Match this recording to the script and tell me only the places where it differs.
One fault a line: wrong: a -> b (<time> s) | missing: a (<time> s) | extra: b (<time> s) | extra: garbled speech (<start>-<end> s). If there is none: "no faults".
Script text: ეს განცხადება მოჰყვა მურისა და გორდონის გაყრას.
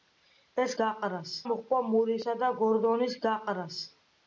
wrong: განცხადება -> გაყრას (0.8 s)